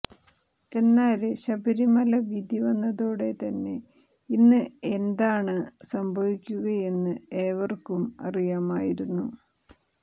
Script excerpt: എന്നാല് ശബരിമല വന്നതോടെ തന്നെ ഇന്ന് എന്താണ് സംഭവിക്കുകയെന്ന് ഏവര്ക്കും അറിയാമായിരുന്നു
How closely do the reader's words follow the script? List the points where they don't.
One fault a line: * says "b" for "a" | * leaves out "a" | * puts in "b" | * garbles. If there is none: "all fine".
* puts in "വിധി"